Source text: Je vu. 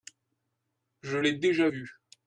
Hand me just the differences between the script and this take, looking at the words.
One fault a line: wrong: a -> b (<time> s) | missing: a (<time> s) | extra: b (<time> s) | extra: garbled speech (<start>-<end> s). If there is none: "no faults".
extra: l'ai déjà (1.2 s)